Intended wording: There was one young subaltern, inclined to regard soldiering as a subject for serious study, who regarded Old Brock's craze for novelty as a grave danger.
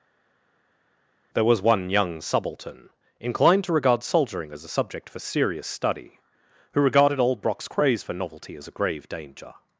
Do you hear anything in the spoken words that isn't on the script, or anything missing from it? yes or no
no